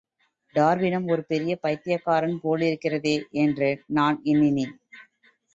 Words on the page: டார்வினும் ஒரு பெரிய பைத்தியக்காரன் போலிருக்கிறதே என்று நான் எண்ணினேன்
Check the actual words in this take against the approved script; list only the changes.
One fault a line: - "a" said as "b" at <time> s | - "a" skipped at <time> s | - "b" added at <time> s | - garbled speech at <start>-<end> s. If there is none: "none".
none